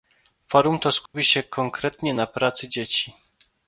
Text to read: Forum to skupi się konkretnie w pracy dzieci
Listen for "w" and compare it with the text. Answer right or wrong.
wrong